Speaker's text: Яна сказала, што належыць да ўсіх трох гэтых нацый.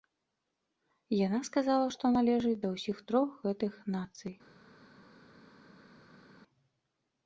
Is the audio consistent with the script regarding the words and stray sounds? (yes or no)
yes